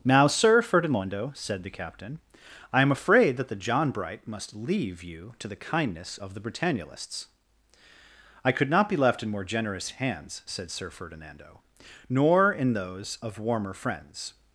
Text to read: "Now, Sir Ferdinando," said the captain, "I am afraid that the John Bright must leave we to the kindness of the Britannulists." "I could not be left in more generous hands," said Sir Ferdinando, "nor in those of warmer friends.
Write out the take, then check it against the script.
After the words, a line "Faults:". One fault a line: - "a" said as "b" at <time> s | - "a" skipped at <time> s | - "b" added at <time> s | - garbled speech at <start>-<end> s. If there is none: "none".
"Now, Sir Ferdinando," said the captain, "I am afraid that the John Bright must leave you to the kindness of the Britannulists." "I could not be left in more generous hands," said Sir Ferdinando, "nor in those of warmer friends.
Faults:
- "we" said as "you" at 5.0 s